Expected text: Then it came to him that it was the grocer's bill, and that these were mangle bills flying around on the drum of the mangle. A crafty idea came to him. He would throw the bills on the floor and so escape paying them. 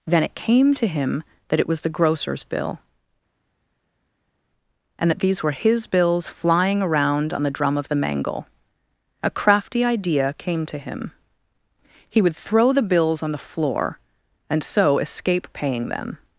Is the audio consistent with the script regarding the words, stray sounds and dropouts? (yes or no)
no